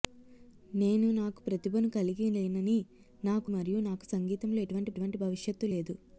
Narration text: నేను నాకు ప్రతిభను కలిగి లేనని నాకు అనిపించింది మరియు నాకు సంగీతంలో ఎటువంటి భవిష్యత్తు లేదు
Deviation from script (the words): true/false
true